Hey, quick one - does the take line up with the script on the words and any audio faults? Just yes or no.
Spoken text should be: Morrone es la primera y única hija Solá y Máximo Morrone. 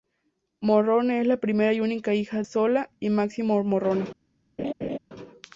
no